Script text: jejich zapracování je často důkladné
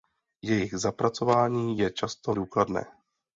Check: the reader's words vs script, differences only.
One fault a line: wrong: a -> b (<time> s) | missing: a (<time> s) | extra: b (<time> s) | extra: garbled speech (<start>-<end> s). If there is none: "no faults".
no faults